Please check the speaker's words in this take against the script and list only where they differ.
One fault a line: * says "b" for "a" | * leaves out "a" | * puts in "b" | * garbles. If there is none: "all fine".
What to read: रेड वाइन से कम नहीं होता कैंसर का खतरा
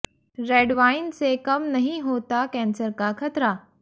all fine